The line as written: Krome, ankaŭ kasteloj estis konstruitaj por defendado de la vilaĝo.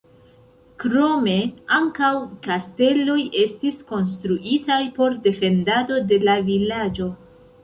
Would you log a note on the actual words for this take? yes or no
no